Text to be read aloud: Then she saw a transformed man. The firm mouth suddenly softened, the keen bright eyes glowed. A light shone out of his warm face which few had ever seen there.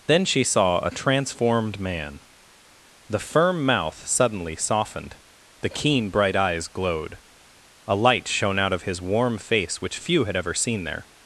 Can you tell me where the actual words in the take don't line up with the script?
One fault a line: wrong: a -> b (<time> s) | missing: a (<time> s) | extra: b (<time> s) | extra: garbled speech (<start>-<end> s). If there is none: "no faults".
no faults